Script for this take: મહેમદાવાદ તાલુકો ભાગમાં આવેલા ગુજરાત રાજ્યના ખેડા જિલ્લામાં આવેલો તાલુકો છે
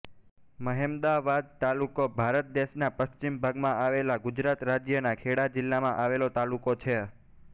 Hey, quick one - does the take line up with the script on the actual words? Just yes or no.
no